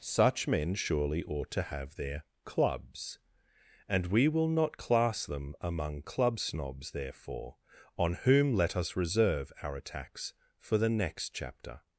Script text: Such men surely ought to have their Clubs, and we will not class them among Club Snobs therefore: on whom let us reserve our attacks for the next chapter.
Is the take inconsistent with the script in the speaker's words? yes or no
no